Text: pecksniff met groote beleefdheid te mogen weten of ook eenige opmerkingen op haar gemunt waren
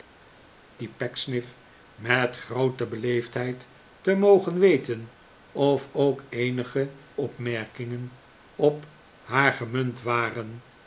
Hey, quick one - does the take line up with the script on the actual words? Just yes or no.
yes